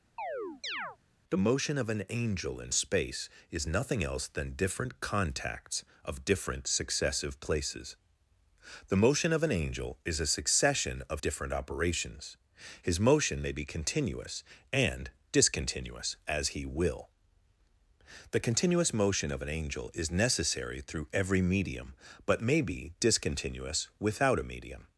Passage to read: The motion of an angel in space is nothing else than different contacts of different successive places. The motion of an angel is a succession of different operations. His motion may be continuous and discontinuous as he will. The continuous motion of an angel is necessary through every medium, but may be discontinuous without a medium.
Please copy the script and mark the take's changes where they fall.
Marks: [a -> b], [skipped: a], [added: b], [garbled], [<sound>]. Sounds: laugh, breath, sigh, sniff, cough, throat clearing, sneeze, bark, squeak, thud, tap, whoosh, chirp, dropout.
[chirp] The motion of an angel in space is nothing else than different contacts of different successive places. The motion of an angel is a succession of different operations. His motion may be continuous and discontinuous as he will. The continuous motion of an angel is necessary through every medium, but may be discontinuous without a medium.